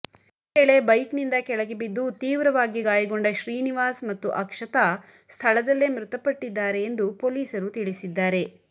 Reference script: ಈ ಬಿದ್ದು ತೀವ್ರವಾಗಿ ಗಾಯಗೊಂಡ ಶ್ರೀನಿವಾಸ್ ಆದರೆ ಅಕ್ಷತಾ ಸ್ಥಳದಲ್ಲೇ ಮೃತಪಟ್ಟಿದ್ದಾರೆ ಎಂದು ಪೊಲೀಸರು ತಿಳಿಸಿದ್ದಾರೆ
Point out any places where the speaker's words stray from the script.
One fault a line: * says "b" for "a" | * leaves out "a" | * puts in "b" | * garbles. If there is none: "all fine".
* puts in "ವೇಳೆ ಬೈಕ್ನಿಂದ ಕೆಳಗೆ"
* says "ಮತ್ತು" for "ಆದರೆ"